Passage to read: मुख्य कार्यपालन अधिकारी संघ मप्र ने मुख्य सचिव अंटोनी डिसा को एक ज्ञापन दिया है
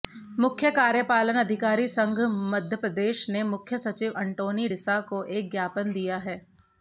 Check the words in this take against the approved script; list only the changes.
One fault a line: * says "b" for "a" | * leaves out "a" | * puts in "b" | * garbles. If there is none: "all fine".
all fine